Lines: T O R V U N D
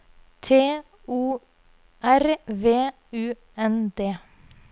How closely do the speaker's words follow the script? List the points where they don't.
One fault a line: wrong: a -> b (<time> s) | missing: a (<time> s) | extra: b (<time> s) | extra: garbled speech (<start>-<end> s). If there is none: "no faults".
no faults